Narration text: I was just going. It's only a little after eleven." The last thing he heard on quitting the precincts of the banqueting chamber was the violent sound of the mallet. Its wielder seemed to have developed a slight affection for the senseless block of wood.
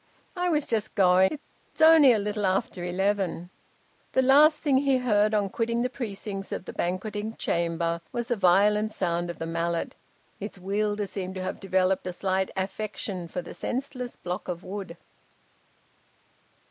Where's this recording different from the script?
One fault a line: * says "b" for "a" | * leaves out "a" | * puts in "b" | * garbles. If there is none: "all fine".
all fine